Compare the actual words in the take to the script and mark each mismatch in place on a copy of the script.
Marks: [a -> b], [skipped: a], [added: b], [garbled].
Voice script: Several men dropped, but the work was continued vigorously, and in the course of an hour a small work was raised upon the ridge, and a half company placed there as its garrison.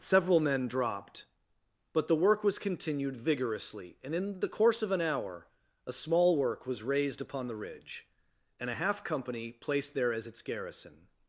Several men dropped, but the work was continued vigorously, and in the course of an hour a small work was raised upon the ridge, and a half company placed there as its garrison.